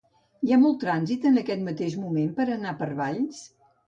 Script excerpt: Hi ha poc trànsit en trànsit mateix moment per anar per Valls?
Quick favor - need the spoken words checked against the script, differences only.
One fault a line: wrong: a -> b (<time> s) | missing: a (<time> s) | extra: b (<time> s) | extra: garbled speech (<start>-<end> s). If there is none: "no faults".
wrong: poc -> molt (0.6 s)
wrong: trànsit -> aquest (1.4 s)